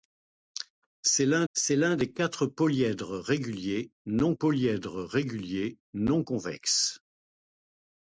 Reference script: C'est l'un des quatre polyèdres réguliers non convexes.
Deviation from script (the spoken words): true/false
true